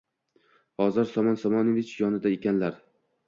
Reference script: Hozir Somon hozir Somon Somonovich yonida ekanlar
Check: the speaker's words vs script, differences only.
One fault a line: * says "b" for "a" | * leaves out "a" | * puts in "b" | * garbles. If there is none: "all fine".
* leaves out "hozir Somon"